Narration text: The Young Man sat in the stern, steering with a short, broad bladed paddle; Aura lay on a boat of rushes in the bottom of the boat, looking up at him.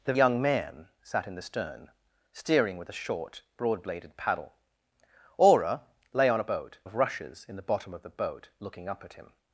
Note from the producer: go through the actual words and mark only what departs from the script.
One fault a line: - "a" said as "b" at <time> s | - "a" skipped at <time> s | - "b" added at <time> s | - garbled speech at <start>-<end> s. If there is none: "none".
none